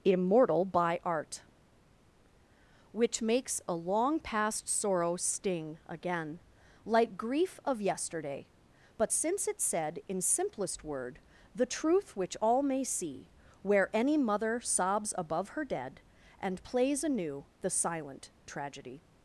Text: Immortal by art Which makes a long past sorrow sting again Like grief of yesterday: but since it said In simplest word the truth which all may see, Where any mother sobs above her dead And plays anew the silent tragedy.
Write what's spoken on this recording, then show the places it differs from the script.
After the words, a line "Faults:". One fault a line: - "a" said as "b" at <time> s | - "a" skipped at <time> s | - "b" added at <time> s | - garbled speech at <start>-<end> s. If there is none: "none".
Immortal by art Which makes a long past sorrow sting again Like grief of yesterday: but since it said In simplest word the truth which all may see, Where any mother sobs above her dead And plays anew the silent tragedy.
Faults:
none